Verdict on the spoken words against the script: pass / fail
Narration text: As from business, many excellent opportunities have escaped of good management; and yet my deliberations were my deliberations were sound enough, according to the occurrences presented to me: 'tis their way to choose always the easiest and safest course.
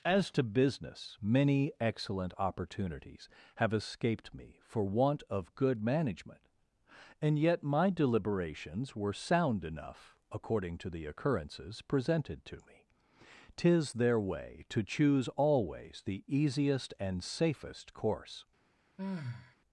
fail